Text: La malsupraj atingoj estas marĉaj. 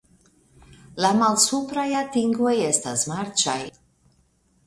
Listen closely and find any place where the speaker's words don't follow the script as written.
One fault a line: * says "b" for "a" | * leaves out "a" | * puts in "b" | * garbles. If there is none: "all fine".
all fine